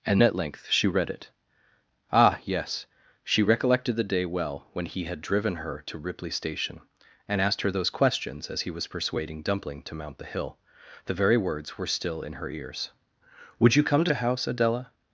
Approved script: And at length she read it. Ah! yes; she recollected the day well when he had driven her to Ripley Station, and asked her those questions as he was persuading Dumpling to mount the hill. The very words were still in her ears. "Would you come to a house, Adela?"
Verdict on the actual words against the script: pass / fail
pass